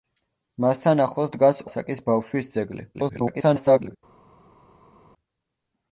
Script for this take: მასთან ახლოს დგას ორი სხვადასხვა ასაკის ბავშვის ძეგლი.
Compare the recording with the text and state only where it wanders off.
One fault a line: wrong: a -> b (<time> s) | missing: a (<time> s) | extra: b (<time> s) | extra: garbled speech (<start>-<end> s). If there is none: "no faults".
missing: ორი სხვადასხვა (1.6 s)
extra: garbled speech (2.9-4.0 s)